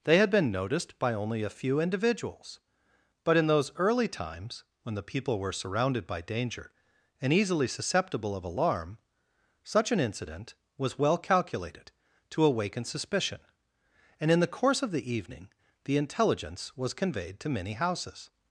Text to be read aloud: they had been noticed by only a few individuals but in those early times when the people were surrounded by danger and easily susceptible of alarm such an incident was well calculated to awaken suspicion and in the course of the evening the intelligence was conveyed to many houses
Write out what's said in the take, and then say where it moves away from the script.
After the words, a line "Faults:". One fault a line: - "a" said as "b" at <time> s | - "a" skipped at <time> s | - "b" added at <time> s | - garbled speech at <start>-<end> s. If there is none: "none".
they had been noticed by only a few individuals but in those early times when the people were surrounded by danger and easily susceptible of alarm such an incident was well calculated to awaken suspicion and in the course of the evening the intelligence was conveyed to many houses
Faults:
none